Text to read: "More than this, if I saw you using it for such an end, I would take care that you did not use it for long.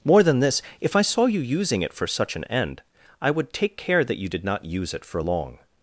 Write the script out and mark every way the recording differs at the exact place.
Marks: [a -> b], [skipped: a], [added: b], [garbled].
"More than this, if I saw you using it for such an end, I would take care that you did not use it for long.